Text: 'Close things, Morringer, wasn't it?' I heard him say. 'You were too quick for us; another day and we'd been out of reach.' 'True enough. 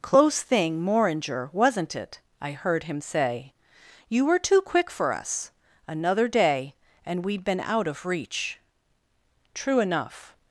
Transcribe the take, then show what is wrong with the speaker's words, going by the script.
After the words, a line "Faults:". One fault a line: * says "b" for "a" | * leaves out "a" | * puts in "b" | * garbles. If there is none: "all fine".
'Close thing, Morringer, wasn't it?' I heard him say. 'You were too quick for us; another day and we'd been out of reach.' 'True enough.
Faults:
* says "thing" for "things"